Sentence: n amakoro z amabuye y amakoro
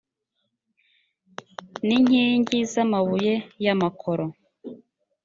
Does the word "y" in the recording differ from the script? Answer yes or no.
no